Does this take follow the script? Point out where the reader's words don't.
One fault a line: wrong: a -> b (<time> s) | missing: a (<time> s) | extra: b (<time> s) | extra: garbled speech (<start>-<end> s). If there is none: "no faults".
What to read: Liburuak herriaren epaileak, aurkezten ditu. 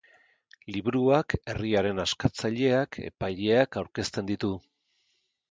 extra: askatzaileak (2.0 s)